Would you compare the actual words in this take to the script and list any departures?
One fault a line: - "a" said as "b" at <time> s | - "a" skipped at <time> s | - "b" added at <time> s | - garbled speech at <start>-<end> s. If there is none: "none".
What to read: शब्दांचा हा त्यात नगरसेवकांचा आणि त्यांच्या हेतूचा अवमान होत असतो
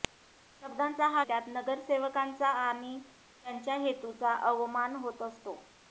none